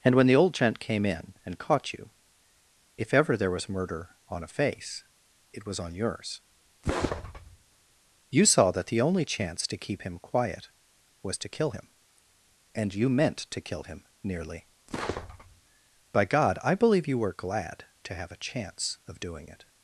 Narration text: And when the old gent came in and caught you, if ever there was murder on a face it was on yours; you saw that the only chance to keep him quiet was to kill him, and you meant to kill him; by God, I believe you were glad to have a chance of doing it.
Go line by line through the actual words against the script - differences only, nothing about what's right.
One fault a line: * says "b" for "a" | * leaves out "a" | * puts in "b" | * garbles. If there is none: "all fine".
* puts in "nearly"